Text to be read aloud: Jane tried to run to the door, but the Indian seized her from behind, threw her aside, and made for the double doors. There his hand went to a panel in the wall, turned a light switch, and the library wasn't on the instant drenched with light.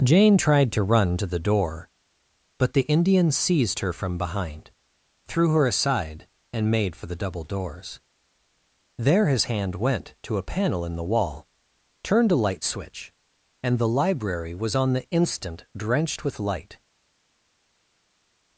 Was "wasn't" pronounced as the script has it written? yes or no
no